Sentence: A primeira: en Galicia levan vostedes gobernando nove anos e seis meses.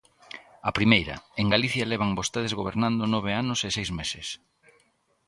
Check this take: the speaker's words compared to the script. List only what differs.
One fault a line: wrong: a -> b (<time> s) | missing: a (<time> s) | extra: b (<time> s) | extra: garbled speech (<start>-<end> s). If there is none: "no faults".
no faults